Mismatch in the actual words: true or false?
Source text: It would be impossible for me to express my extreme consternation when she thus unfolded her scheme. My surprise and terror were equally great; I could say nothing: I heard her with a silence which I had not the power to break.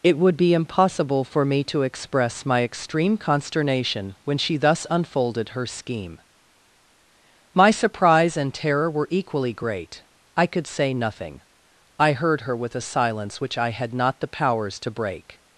true